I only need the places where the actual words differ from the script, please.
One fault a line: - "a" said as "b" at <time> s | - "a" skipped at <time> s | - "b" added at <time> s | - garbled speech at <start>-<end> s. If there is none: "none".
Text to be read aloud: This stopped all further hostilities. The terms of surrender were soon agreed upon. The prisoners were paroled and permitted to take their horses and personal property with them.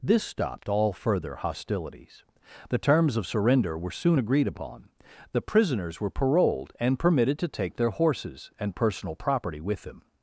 none